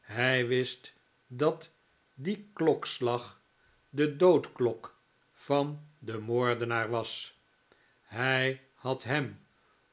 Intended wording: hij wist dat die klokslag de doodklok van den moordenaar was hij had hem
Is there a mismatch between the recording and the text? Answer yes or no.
no